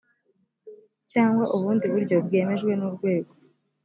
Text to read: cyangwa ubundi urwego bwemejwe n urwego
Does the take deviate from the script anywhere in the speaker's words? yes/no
yes